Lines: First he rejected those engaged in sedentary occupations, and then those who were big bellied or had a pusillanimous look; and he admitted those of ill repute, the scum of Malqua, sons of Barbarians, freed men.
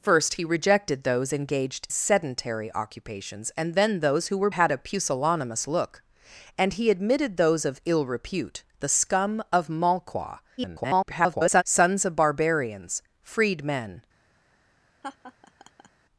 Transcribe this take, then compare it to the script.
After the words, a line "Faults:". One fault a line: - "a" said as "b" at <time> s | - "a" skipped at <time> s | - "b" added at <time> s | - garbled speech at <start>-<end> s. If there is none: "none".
First he rejected those engaged sedentary occupations, and then those who were had a pusillanimous look; and he admitted those of ill repute, the scum of Malqua, [garbled] sons of Barbarians, freed men.
Faults:
- "in" skipped at 1.9 s
- "big bellied or" skipped at 4.5 s
- garbled speech at 10.6-11.6 s